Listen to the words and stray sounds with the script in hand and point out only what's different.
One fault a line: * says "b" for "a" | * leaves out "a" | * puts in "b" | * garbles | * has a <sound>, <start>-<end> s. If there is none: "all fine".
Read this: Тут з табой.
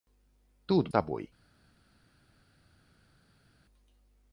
all fine